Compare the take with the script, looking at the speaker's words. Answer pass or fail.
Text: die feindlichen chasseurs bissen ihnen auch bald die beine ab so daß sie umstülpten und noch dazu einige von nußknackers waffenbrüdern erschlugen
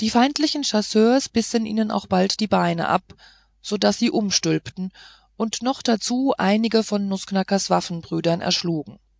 pass